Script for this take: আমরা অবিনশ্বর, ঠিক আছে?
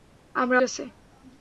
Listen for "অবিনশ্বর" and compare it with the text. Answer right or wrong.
wrong